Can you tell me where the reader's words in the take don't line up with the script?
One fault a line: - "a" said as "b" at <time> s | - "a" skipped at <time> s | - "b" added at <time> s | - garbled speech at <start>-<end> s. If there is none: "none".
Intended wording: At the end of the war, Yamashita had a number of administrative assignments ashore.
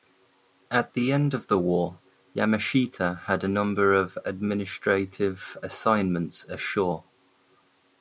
none